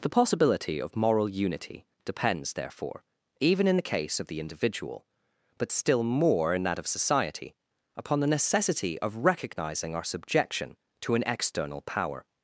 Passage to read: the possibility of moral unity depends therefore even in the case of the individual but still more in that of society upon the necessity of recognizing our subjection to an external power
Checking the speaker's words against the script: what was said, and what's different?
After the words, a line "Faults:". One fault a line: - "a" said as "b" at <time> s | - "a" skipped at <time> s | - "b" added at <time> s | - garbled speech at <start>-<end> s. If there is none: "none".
the possibility of moral unity depends therefore even in the case of the individual but still more in that of society upon the necessity of recognizing our subjection to an external power
Faults:
none